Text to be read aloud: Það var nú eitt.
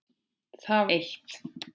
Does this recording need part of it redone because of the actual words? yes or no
yes